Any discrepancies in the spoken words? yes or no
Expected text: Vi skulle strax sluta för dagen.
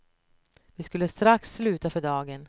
no